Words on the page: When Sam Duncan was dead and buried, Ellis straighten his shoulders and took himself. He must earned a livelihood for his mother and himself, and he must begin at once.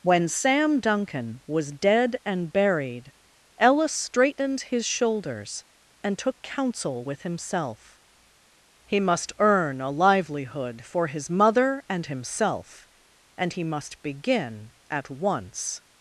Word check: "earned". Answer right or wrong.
wrong